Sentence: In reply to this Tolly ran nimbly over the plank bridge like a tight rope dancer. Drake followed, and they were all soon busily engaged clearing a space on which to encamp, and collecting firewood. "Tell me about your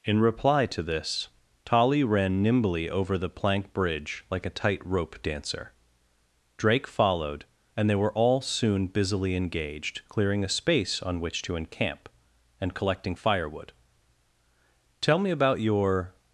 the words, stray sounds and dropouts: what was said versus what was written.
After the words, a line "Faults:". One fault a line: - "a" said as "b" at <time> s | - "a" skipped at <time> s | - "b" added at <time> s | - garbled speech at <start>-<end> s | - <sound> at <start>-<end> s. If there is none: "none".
In reply to this Tolly ran nimbly over the plank bridge like a tight rope dancer. Drake followed, and they were all soon busily engaged clearing a space on which to encamp, and collecting firewood. "Tell me about your
Faults:
none